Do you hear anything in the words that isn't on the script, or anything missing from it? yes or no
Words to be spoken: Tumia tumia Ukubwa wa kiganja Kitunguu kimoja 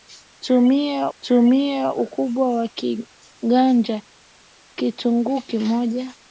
no